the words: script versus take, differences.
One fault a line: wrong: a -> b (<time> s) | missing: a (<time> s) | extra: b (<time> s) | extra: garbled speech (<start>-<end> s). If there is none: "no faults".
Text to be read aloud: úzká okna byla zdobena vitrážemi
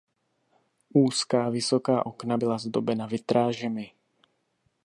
extra: vysoká (1.5 s)